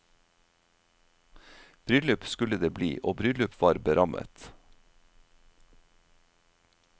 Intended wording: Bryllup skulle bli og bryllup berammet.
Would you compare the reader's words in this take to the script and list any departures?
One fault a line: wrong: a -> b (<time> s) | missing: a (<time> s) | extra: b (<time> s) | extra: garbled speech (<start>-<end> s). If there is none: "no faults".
extra: det (2.6 s)
extra: var (3.6 s)